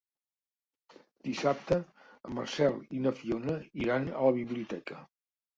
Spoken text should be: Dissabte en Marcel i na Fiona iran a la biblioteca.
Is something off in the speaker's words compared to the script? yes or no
no